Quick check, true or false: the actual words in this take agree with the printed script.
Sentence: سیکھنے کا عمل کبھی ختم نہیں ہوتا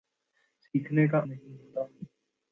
false